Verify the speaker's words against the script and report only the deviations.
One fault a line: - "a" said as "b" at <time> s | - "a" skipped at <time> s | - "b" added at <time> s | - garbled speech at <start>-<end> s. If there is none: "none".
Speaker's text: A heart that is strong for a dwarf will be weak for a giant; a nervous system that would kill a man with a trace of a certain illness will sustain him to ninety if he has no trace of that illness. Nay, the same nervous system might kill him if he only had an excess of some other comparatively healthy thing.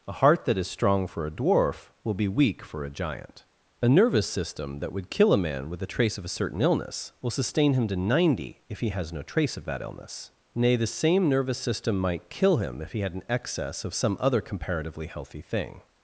- "only" skipped at 13.0 s